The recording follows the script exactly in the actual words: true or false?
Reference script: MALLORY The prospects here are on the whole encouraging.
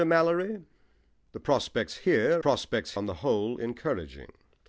false